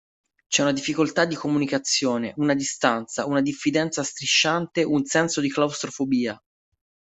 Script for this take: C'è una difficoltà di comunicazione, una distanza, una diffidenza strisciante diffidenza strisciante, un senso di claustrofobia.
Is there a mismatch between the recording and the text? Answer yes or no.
yes